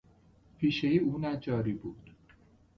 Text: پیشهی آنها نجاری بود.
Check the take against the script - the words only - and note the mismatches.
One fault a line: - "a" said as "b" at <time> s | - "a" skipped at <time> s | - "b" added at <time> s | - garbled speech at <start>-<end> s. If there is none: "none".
- "آنها" said as "او" at 1.0 s